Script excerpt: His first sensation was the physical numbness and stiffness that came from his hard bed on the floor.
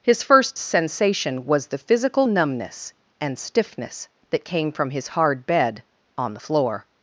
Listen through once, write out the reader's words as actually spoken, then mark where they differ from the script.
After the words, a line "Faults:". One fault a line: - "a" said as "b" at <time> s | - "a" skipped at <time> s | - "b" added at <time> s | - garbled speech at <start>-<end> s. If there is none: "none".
His first sensation was the physical numbness and stiffness that came from his hard bed on the floor.
Faults:
none